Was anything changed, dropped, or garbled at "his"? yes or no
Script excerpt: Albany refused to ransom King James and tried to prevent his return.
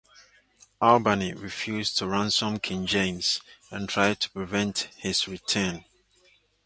no